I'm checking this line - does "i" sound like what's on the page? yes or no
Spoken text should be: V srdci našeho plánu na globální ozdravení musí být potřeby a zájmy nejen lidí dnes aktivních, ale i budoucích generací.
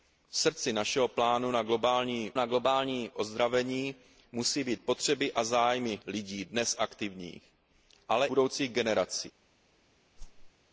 no